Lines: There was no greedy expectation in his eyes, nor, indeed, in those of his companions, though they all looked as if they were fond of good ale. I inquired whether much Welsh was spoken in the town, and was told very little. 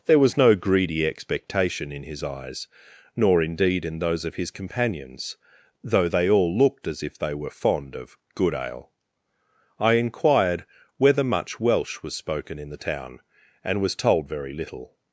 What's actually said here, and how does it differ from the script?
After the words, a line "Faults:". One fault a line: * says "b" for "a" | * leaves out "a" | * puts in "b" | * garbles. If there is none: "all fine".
There was no greedy expectation in his eyes, nor, indeed, in those of his companions, though they all looked as if they were fond of good ale. I inquired whether much Welsh was spoken in the town, and was told very little.
Faults:
all fine